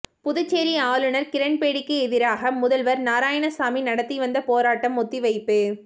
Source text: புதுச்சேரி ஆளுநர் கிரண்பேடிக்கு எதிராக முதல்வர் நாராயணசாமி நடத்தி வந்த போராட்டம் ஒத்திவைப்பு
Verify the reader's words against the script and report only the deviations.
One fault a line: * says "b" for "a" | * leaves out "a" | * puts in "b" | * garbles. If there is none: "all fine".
all fine